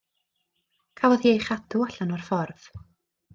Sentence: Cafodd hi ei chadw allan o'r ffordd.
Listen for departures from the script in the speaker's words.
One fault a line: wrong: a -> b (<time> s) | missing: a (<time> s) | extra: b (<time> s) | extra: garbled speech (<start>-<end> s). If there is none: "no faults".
no faults